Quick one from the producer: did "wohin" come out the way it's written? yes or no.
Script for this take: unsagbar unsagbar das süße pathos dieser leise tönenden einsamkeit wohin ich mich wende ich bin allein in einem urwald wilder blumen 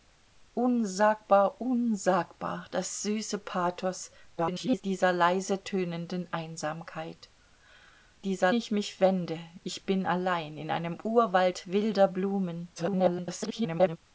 no